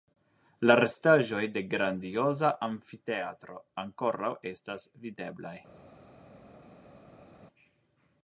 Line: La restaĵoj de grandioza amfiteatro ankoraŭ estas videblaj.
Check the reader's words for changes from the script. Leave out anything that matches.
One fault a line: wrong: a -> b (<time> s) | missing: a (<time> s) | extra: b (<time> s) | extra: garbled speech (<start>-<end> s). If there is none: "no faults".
no faults